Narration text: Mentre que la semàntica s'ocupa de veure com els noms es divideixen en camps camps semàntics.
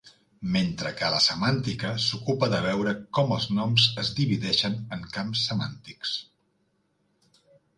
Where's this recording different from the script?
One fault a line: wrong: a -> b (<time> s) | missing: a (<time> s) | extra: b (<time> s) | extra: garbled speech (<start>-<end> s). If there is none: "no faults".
missing: camps (5.5 s)